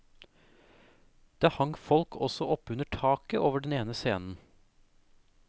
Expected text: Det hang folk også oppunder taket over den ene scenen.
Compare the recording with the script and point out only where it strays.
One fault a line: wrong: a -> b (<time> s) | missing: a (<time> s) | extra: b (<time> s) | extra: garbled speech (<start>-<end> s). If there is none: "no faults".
no faults